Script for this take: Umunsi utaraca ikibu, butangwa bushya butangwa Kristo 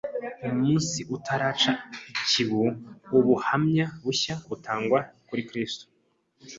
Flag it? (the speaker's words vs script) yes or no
yes